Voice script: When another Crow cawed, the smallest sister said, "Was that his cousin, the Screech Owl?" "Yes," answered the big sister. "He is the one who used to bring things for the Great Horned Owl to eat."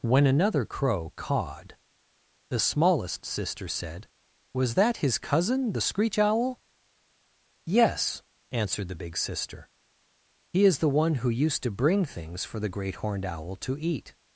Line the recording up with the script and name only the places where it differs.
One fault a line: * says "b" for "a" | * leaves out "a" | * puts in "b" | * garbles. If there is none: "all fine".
all fine